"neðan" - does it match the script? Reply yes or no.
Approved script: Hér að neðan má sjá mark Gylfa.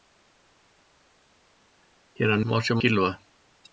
no